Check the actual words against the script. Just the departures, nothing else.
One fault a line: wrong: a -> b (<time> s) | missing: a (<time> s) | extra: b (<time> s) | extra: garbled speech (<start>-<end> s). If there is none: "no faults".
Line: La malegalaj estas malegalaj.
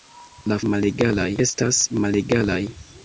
no faults